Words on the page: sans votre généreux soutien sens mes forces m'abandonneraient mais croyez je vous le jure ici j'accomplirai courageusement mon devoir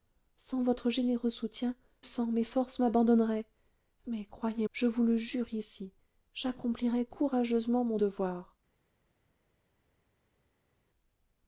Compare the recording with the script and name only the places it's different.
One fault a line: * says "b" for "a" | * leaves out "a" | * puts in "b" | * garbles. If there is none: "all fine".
all fine